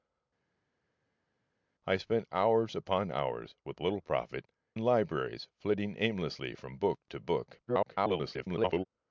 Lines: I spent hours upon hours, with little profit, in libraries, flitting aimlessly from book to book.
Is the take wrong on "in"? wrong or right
wrong